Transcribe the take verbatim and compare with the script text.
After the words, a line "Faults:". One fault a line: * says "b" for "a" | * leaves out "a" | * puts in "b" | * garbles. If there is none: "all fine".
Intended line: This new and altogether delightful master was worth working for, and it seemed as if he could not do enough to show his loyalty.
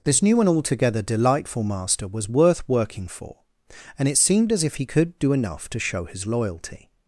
This new and altogether delightful master was worth working for, and it seemed as if he could do enough to show his loyalty.
Faults:
* leaves out "not"